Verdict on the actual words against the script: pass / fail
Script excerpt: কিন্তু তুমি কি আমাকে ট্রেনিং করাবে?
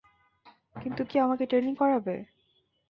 fail